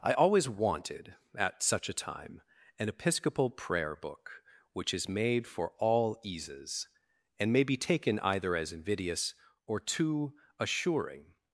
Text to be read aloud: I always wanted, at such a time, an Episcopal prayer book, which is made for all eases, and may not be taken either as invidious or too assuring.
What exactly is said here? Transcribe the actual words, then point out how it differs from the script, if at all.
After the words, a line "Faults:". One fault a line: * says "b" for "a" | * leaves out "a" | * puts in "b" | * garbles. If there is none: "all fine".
I always wanted, at such a time, an Episcopal prayer book, which is made for all eases, and may be taken either as invidious or too assuring.
Faults:
* leaves out "not"